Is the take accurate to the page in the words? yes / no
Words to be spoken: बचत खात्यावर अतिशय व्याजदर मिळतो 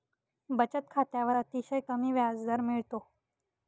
no